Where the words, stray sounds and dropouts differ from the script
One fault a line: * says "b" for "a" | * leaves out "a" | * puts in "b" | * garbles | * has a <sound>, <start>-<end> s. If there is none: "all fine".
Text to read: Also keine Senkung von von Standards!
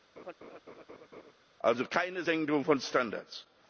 * has a laugh, 0.2-1.3 s
* leaves out "von"